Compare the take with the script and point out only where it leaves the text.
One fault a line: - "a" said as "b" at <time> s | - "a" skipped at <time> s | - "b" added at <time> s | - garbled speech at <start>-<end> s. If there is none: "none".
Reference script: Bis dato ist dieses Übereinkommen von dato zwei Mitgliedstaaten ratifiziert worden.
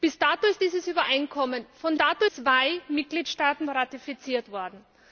none